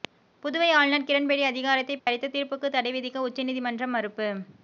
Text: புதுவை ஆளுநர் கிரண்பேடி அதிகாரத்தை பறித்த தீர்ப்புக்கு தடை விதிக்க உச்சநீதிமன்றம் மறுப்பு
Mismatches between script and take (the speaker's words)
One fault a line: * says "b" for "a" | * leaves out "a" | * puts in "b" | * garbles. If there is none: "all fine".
all fine